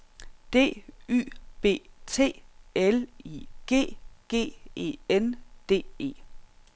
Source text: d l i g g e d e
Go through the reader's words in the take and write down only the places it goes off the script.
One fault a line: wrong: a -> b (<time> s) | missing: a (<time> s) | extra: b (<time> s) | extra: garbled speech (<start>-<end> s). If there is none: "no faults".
extra: y b t (1.1 s)
extra: n (5.1 s)